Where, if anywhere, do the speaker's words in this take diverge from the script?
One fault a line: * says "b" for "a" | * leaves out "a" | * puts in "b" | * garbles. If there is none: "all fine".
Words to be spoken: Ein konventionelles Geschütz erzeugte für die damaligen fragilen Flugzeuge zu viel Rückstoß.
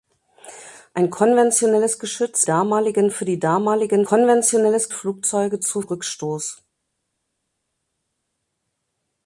* says "damaligen" for "erzeugte"
* says "konventionelles" for "fragilen"
* leaves out "viel"